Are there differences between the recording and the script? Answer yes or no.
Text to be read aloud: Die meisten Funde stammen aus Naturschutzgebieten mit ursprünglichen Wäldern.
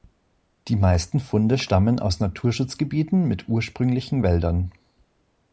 no